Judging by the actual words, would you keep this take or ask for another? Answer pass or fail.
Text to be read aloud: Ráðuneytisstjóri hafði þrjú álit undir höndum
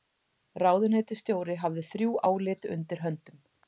pass